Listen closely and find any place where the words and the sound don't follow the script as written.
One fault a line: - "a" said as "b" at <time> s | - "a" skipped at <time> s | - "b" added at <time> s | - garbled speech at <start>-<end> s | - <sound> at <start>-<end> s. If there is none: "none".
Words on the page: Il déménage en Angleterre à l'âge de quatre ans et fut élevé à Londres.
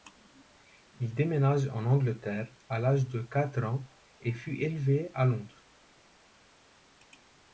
none